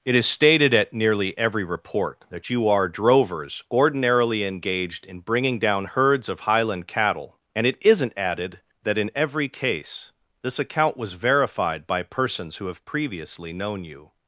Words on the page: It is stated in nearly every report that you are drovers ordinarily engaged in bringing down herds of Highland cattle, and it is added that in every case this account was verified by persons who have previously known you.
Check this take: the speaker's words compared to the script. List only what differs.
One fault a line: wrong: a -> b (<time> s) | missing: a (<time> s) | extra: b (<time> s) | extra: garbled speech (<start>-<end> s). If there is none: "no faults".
wrong: in -> at (0.7 s)
wrong: is -> isn't (7.8 s)